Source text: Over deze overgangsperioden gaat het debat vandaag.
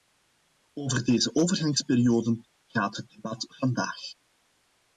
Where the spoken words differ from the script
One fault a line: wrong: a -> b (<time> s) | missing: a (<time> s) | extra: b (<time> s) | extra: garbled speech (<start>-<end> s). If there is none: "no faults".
no faults